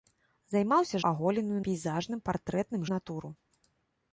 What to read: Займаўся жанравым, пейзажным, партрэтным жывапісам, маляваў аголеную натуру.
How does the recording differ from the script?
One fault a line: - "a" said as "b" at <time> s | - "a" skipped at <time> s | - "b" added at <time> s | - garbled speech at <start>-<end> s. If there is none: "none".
- "жанравым" said as "аголеную" at 1.1 s
- "жывапісам маляваў аголеную" skipped at 2.8 s